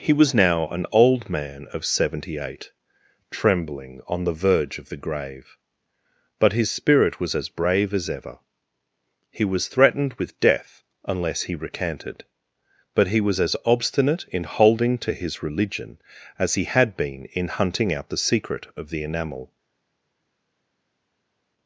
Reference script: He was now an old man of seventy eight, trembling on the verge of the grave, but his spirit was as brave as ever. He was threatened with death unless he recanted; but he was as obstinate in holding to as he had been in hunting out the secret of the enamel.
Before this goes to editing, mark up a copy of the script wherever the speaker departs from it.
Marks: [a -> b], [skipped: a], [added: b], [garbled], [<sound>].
He was now an old man of seventy eight, trembling on the verge of the grave, but his spirit was as brave as ever. He was threatened with death unless he recanted; but he was as obstinate in holding to [added: his religion] as he had been in hunting out the secret of the enamel.